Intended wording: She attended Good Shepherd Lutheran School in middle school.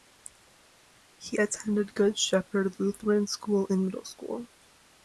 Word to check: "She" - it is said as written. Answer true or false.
false